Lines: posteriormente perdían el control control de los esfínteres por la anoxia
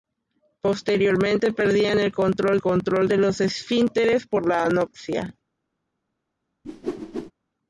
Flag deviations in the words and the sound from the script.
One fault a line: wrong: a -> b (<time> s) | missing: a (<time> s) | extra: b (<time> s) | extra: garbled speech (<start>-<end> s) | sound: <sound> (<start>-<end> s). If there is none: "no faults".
sound: whoosh (6.6-7.3 s)